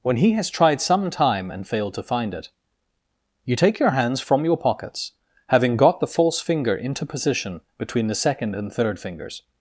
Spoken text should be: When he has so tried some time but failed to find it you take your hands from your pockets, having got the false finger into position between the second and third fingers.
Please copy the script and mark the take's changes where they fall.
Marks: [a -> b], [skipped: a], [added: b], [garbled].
When he has [skipped: so] tried some time [but -> and] failed to find it you take your hands from your pockets, having got the false finger into position between the second and third fingers.